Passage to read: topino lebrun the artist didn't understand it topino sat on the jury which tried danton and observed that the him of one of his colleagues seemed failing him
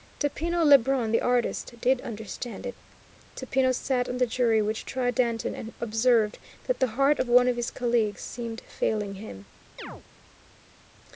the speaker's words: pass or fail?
fail